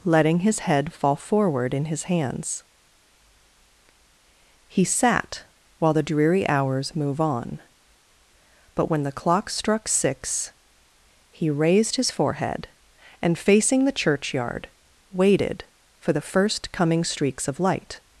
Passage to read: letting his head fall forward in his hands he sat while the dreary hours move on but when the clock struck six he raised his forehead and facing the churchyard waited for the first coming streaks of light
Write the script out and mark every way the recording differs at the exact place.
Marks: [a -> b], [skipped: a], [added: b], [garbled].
letting his head fall forward in his hands he sat while the dreary hours move on but when the clock struck six he raised his forehead and facing the churchyard waited for the first coming streaks of light